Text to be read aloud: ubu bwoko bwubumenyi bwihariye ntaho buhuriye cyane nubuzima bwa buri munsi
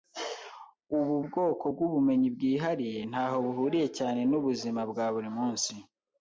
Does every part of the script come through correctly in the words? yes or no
yes